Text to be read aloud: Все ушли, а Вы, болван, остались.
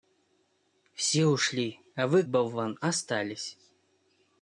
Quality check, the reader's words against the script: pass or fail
pass